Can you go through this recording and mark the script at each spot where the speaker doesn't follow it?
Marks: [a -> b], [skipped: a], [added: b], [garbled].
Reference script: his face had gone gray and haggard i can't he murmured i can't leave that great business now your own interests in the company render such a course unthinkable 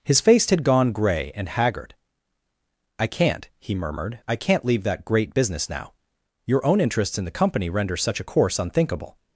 his face had gone gray and haggard i can't he murmured i can't leave that great business now your own interests in the company render such a course unthinkable